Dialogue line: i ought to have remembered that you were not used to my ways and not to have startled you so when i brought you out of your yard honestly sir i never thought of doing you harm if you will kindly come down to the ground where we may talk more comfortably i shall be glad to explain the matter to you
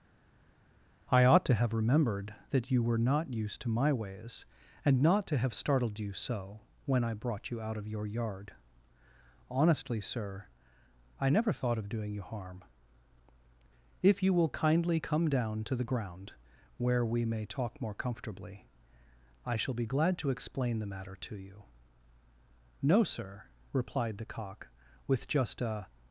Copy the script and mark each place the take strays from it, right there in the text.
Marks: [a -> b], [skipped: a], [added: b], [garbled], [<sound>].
i ought to have remembered that you were not used to my ways and not to have startled you so when i brought you out of your yard honestly sir i never thought of doing you harm if you will kindly come down to the ground where we may talk more comfortably i shall be glad to explain the matter to you [added: no sir replied the cock with just a]